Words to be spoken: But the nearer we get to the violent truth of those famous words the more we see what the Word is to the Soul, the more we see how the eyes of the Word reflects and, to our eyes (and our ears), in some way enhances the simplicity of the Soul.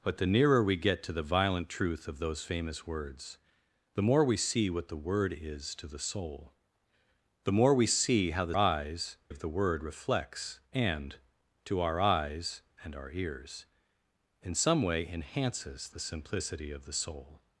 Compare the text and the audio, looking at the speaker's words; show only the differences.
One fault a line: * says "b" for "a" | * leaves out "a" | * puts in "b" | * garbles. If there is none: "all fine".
all fine